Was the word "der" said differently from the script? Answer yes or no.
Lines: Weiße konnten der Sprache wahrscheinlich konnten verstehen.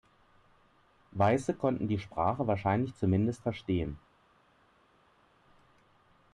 yes